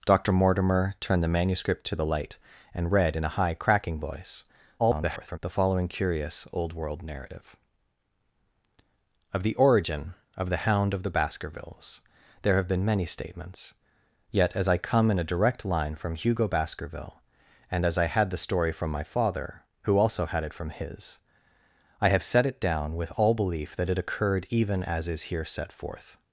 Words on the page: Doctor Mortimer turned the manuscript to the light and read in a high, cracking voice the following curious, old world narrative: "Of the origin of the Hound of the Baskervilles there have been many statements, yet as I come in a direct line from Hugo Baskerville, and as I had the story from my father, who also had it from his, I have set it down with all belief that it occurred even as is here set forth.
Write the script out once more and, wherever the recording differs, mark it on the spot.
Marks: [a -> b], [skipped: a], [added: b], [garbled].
Doctor Mortimer turned the manuscript to the light and read in a high, cracking voice [garbled] the following curious, old world narrative: "Of the origin of the Hound of the Baskervilles there have been many statements, yet as I come in a direct line from Hugo Baskerville, and as I had the story from my father, who also had it from his, I have set it down with all belief that it occurred even as is here set forth.